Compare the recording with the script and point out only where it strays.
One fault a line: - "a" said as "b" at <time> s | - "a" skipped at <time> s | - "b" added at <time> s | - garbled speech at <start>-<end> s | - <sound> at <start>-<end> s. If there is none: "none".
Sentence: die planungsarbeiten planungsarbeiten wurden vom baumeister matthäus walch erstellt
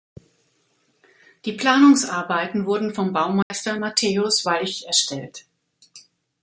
- "planungsarbeiten" skipped at 2.6 s
- dropout at 3.4-3.5 s